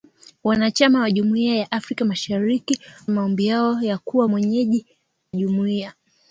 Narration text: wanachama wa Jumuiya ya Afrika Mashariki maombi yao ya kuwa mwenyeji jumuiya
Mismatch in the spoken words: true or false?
false